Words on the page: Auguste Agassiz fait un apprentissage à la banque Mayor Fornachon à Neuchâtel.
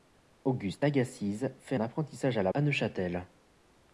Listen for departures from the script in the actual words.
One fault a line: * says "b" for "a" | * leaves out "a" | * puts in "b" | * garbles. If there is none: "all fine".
* leaves out "un"
* leaves out "banque Mayor Fornachon"